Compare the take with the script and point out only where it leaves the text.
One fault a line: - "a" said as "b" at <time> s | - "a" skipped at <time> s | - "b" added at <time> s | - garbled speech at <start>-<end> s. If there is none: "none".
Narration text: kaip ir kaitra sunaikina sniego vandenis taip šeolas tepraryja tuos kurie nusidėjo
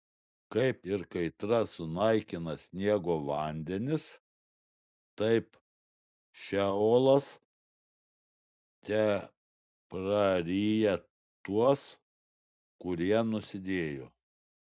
none